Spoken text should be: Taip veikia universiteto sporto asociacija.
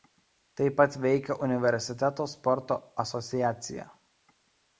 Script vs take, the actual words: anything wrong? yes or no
yes